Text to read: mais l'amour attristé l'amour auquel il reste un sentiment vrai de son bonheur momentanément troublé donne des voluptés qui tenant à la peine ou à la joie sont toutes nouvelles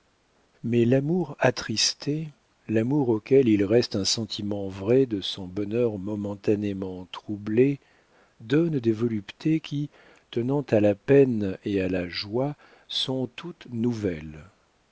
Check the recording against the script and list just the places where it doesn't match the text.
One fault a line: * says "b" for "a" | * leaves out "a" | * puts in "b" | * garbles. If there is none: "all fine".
* says "et" for "ou"